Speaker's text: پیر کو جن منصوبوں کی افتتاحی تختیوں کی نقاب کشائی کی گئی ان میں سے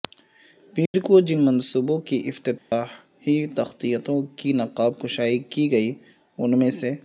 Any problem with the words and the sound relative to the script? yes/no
yes